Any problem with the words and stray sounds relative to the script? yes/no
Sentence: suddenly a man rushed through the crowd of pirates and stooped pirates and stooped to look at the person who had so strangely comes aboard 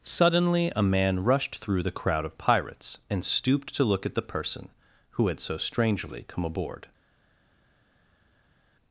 yes